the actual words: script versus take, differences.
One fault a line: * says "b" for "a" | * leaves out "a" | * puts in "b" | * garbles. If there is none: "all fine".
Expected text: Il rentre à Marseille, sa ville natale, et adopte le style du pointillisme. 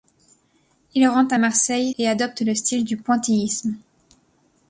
* leaves out "sa ville natale"